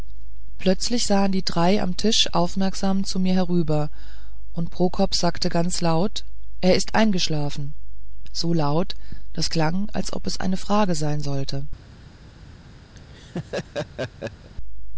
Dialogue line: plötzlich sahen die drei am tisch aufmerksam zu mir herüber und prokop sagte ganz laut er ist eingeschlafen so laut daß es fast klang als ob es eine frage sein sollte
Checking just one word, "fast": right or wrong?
wrong